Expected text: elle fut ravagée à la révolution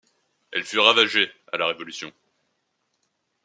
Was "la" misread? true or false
false